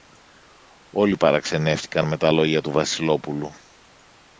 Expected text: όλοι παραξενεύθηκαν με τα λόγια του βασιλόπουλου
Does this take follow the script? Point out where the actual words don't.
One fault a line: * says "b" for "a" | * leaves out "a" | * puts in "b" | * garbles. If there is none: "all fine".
all fine